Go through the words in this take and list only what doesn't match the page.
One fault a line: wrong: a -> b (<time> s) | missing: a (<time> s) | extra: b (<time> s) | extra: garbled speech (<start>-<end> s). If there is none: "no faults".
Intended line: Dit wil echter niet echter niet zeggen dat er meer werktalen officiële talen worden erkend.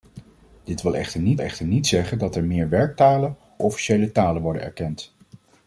no faults